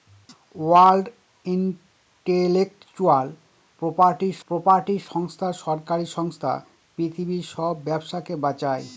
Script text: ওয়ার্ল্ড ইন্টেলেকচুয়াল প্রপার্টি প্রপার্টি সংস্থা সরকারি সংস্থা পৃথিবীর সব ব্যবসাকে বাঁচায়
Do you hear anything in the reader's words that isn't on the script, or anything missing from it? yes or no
no